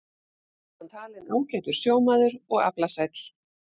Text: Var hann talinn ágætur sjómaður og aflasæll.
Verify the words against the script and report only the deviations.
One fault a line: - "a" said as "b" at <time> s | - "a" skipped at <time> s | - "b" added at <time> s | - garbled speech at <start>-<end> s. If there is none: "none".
none